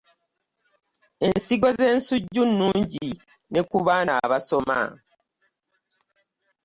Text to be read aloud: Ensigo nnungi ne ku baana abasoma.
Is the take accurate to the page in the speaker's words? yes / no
no